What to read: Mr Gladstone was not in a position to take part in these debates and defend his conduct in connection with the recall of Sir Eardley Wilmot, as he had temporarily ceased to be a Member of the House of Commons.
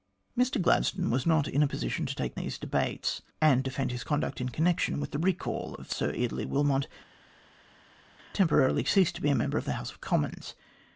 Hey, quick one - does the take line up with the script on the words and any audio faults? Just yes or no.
no